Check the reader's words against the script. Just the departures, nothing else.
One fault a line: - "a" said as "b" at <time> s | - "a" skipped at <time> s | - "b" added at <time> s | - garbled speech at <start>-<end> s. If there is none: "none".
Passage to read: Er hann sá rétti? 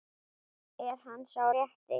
none